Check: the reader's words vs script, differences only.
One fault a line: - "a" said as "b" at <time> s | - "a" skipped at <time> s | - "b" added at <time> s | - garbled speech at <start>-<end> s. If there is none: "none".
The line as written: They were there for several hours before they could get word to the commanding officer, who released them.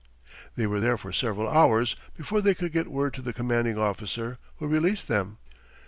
none